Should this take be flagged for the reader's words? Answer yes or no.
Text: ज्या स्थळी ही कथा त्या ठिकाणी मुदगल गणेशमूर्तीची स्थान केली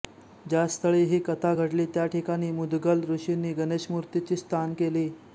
yes